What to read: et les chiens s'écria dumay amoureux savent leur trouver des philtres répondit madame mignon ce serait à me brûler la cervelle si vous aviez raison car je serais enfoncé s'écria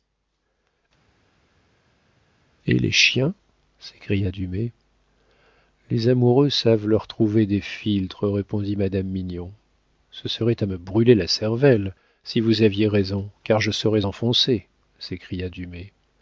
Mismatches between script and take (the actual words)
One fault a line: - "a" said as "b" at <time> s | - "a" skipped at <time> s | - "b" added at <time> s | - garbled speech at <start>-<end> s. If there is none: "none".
- "les" added at 5.9 s